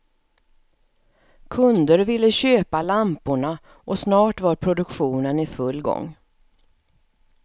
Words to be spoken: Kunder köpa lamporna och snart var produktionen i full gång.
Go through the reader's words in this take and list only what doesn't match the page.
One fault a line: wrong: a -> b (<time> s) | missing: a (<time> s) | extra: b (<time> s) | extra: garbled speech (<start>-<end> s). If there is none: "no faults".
extra: ville (2.0 s)